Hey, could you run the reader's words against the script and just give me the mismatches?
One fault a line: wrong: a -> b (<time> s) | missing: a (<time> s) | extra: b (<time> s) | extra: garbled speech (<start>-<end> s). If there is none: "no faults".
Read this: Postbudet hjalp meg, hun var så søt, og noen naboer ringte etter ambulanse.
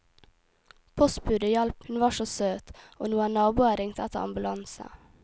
missing: meg (1.9 s)